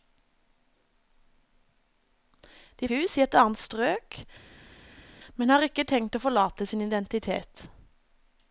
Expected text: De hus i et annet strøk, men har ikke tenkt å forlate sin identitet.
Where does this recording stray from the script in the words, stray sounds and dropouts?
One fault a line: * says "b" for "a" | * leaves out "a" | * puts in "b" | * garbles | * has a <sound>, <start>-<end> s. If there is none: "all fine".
all fine